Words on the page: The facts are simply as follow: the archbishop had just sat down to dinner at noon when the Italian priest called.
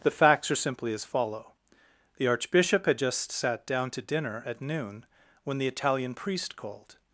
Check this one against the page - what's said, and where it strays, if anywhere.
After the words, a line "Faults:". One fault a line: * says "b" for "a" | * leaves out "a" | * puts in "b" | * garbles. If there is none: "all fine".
The facts are simply as follow: the archbishop had just sat down to dinner at noon when the Italian priest called.
Faults:
all fine